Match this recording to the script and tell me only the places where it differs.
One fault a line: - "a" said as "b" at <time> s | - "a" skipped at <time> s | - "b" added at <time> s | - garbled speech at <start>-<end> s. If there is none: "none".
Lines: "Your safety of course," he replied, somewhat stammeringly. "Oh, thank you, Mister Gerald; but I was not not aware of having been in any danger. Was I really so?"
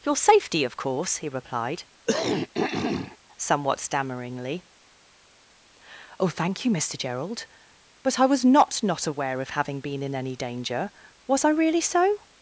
none